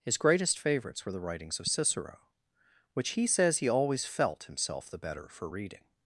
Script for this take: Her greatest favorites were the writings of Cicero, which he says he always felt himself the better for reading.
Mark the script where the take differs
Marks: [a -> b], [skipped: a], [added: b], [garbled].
[Her -> His] greatest favorites were the writings of Cicero, which he says he always felt himself the better for reading.